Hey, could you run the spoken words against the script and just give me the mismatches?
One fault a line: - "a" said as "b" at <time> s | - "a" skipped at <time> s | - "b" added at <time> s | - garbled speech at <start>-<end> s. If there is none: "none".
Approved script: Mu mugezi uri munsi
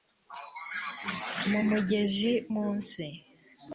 - "uri" skipped at 2.3 s